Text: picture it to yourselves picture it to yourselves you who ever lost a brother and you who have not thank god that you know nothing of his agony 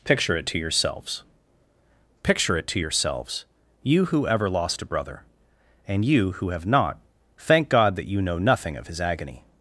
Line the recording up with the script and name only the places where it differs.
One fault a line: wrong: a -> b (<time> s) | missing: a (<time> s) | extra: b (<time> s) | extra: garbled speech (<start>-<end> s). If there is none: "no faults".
no faults